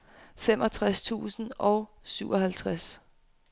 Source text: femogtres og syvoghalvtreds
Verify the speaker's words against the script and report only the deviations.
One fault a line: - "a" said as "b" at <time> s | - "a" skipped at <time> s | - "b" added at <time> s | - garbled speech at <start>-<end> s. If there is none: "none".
- "tusind" added at 1.0 s